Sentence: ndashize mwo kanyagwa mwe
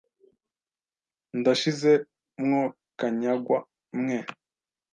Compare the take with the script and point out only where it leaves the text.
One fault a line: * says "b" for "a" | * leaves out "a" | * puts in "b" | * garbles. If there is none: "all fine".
all fine